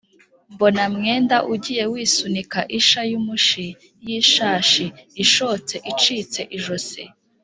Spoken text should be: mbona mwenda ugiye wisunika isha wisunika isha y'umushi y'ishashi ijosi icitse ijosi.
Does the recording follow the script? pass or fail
fail